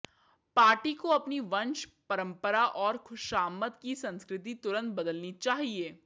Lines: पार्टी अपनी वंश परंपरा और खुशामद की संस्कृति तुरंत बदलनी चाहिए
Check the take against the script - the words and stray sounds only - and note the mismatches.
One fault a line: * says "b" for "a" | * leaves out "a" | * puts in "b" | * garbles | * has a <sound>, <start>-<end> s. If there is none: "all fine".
* puts in "को"